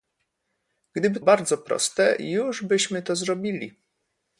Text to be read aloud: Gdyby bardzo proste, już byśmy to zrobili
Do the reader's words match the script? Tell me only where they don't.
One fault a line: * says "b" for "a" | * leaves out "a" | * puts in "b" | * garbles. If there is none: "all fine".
all fine